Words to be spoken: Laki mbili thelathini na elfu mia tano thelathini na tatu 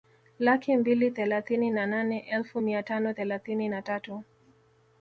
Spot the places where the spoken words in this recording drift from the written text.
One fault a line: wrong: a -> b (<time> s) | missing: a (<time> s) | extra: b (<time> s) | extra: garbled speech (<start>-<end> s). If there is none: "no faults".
extra: nane (1.9 s)